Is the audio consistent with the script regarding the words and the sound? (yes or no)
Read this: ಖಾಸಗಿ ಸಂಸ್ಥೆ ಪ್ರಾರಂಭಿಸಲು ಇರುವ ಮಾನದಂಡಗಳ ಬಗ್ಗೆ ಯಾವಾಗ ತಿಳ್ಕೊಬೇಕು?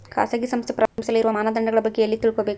no